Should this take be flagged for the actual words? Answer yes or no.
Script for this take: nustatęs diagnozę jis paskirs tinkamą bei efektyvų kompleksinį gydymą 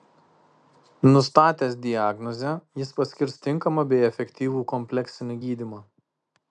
no